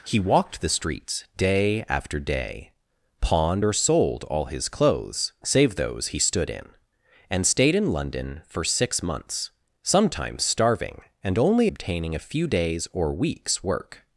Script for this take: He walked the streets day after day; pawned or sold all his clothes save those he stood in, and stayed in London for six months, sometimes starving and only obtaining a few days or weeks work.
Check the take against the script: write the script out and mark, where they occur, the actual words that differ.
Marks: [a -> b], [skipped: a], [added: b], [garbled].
He walked the streets day after day; pawned or sold all his clothes save those he stood in, and stayed in London for six months, sometimes starving and only obtaining a few days or weeks work.